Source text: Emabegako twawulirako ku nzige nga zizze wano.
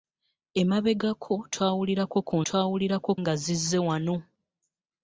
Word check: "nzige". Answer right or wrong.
wrong